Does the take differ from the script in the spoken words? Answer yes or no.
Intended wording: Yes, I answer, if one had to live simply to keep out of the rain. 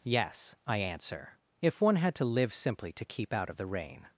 no